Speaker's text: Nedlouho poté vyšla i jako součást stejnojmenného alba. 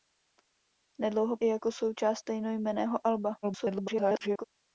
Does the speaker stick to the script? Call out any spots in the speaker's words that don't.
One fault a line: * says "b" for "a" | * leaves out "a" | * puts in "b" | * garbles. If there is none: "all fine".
* leaves out "poté vyšla"
* garbles